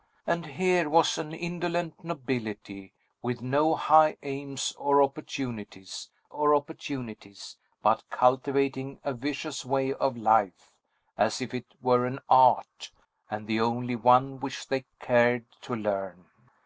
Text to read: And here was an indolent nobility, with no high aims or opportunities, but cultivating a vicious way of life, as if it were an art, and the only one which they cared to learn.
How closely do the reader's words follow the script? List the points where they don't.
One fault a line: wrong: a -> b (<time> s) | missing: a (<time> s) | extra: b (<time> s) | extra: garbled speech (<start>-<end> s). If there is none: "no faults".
extra: or opportunities (6.3 s)